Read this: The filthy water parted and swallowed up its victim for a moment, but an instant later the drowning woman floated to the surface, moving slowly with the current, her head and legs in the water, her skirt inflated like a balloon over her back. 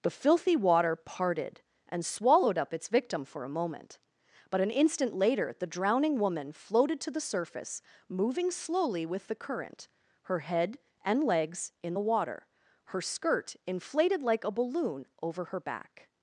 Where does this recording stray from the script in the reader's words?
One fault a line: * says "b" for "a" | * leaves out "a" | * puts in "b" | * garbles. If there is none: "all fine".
all fine